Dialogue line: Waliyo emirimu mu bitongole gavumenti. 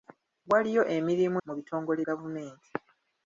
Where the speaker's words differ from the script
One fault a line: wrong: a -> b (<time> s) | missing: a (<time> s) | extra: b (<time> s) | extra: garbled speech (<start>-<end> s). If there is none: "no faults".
no faults